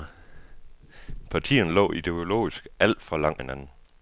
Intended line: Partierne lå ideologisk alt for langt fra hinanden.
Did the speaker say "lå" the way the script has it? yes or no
yes